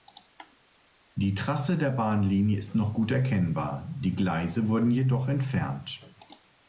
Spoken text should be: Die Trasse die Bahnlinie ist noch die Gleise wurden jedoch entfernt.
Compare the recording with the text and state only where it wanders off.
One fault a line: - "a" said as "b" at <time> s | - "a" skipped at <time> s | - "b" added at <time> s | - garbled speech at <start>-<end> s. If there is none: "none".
- "die" said as "der" at 1.8 s
- "gut erkennbar" added at 2.9 s